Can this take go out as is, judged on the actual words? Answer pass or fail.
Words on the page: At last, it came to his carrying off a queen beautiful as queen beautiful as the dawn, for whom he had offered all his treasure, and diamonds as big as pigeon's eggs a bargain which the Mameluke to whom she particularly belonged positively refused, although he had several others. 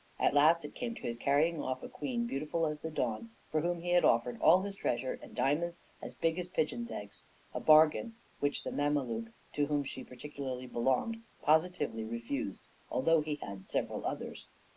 fail